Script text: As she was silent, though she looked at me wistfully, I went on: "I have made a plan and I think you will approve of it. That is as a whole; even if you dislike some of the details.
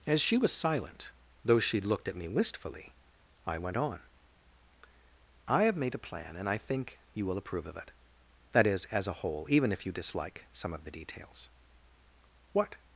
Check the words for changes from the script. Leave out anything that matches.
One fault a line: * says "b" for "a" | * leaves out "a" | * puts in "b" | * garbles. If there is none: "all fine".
* puts in "What"